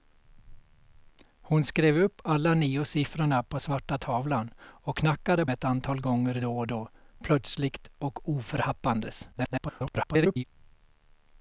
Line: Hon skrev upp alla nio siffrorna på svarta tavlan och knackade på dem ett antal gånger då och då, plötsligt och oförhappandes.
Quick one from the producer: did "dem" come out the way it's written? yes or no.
no